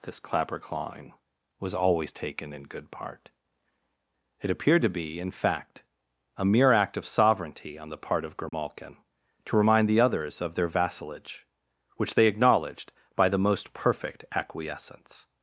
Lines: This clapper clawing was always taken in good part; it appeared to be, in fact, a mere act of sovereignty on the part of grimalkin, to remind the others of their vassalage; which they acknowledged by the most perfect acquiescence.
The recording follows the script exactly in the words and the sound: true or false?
false